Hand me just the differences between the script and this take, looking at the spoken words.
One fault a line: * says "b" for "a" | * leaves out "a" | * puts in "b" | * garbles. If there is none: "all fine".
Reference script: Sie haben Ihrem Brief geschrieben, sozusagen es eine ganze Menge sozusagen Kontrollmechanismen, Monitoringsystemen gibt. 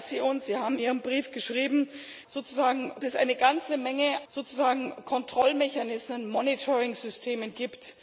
all fine